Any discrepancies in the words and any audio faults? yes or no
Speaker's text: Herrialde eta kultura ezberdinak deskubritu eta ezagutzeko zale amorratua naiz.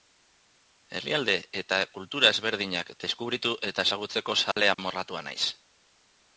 yes